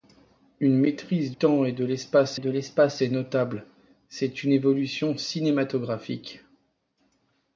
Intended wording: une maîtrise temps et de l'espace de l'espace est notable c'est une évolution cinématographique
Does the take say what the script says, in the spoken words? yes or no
yes